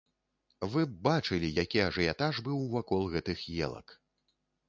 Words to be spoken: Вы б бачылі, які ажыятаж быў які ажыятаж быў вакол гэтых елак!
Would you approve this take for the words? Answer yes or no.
no